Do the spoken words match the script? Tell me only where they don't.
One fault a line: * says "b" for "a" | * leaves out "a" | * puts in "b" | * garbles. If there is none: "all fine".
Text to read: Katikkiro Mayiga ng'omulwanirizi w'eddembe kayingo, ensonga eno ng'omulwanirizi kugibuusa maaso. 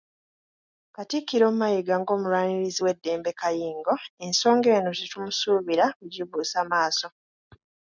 * says "tetumusuubira" for "ng'omulwanirizi"